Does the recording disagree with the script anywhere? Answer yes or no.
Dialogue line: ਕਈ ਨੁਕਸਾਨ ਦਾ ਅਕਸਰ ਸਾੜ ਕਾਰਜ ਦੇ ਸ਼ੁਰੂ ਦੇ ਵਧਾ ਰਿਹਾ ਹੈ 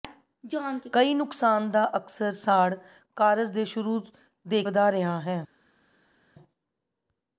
no